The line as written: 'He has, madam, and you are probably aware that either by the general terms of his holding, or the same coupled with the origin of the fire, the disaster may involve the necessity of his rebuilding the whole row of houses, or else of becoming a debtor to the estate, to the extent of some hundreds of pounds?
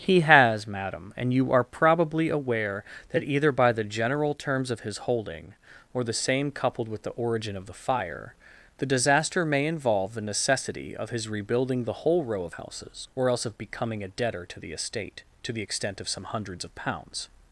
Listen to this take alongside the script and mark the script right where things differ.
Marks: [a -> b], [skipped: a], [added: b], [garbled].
'He has, madam, and you are probably aware that either by the general terms of his holding, or the same coupled with the origin of the fire, the disaster may involve the necessity of his rebuilding the whole row of houses, or else of becoming a debtor to the estate, to the extent of some hundreds of pounds?